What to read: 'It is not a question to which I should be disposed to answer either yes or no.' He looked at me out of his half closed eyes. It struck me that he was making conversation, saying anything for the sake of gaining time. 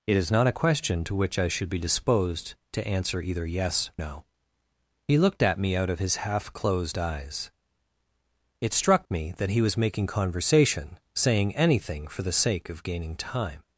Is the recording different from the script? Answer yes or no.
yes